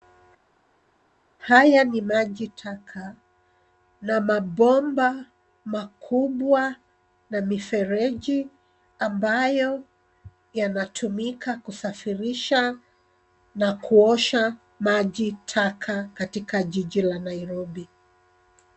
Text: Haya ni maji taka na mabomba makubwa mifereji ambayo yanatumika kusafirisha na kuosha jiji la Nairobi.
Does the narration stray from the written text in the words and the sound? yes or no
yes